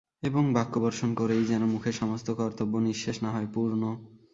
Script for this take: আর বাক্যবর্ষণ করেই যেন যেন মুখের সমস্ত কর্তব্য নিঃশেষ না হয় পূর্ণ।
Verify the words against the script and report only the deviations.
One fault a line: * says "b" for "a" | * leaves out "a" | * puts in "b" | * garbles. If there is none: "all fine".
* says "এবং" for "আর"
* leaves out "যেন"